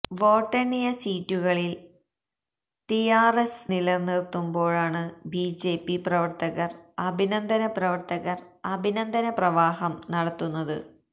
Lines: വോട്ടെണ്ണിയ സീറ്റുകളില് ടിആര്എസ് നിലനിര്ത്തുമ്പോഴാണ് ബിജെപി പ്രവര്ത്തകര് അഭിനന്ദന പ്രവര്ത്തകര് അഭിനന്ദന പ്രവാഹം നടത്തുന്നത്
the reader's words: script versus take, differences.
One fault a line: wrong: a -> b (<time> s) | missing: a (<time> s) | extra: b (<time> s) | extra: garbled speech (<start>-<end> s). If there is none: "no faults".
no faults